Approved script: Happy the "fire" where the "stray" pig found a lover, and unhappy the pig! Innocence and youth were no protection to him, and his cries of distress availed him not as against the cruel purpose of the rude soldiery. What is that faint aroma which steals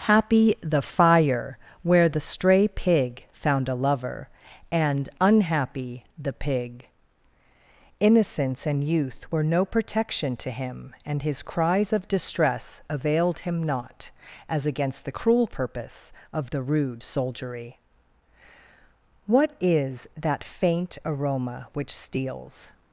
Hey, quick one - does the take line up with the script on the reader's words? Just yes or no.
yes